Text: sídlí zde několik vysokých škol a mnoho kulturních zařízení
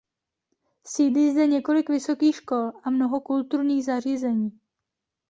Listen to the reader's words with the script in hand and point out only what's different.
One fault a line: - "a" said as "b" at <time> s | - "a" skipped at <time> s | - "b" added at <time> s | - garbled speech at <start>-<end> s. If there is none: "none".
none